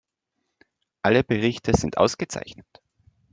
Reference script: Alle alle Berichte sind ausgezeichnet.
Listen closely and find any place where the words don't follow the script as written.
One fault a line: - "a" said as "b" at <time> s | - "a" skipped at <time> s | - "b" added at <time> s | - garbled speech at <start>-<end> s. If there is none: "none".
- "alle" skipped at 1.2 s